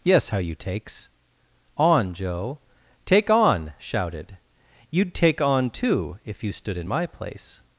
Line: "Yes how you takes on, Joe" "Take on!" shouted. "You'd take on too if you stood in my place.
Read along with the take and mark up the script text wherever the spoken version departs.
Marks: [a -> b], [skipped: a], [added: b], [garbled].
"Yes how you takes on, Joe" "Take on!" shouted. "You'd take on too if you stood in my place.